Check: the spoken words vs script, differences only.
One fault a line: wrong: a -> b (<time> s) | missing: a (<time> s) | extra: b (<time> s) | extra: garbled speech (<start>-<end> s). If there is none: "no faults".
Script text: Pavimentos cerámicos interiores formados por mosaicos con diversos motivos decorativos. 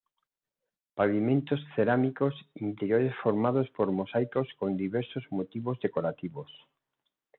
no faults